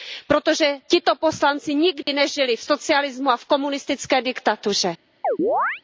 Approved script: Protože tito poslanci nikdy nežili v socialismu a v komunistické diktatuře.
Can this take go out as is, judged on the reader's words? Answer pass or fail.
pass